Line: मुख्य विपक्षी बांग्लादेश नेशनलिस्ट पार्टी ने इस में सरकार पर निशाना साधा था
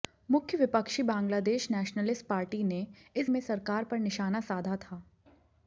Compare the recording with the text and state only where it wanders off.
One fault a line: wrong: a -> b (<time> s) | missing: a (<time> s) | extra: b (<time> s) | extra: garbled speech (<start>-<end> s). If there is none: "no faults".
no faults